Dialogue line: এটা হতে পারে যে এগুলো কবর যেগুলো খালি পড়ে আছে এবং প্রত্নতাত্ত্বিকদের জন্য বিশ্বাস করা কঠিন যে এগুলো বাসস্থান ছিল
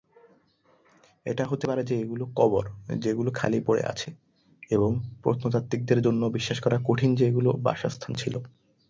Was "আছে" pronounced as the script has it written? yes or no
yes